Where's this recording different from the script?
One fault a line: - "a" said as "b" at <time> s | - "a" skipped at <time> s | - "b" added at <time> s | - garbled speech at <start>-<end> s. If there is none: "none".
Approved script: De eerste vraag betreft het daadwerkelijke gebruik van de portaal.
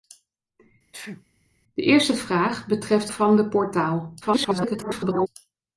- "het daadwerkelijke gebruik" skipped at 3.1 s
- garbled speech at 4.2-5.3 s